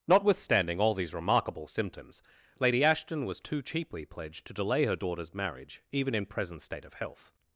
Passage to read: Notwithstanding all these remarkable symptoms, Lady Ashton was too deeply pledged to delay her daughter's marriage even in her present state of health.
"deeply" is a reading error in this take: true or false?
true